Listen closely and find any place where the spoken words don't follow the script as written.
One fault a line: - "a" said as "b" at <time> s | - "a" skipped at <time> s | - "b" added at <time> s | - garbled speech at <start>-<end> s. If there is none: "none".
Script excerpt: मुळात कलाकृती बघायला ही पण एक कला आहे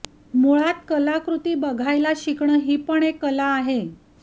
- "शिकणं" added at 2.2 s